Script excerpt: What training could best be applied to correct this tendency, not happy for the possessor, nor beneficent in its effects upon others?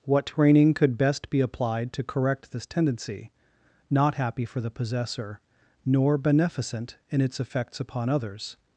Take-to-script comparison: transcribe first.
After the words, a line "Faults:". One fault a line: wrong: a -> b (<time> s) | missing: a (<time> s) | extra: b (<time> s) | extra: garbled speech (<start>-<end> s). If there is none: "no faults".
What training could best be applied to correct this tendency, not happy for the possessor, nor beneficent in its effects upon others?
Faults:
no faults